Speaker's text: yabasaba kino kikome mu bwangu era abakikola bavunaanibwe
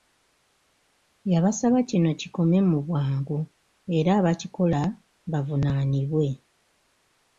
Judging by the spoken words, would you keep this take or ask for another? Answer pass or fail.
pass